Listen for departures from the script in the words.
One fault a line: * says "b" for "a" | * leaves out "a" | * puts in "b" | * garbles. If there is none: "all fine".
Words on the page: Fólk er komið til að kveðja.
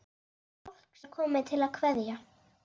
all fine